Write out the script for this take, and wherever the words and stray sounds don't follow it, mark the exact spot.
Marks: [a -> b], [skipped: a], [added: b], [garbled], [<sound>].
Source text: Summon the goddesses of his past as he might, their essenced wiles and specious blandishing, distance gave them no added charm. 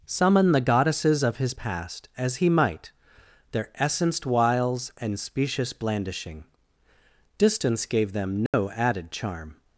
Summon the goddesses of his past as he might, their essenced wiles and specious blandishing, distance gave them no [dropout] added charm.